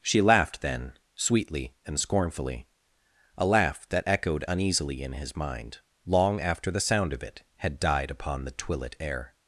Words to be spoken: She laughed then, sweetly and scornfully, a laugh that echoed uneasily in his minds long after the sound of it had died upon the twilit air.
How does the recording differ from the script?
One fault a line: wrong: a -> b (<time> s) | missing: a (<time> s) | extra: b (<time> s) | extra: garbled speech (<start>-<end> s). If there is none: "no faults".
wrong: minds -> mind (5.4 s)